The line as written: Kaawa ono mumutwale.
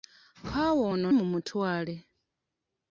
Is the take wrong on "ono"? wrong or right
right